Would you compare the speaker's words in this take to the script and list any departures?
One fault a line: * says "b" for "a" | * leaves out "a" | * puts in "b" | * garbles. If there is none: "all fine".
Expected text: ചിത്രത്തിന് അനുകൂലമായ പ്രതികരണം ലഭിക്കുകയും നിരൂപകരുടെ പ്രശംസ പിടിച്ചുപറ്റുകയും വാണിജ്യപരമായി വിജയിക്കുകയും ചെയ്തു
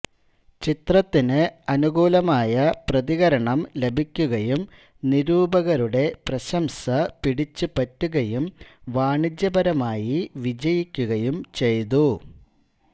all fine